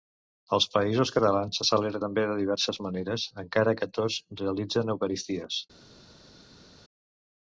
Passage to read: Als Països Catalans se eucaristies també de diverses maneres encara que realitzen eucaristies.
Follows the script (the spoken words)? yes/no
no